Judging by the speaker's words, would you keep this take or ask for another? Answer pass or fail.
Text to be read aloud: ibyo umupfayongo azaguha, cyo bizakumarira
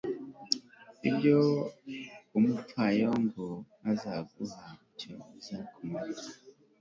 pass